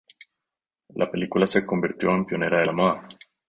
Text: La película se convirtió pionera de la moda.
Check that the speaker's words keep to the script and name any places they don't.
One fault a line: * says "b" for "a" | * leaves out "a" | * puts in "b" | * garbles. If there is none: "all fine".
* puts in "en"